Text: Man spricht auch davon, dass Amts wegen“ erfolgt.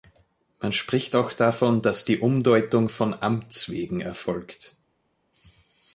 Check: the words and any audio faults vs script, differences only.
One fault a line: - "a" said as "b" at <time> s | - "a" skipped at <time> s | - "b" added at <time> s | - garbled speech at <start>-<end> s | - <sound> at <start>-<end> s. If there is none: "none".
- "die Umdeutung von" added at 2.0 s